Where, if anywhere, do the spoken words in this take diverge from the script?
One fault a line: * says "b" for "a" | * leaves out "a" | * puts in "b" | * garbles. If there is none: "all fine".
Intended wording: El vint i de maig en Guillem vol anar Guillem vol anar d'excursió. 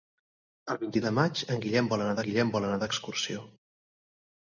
all fine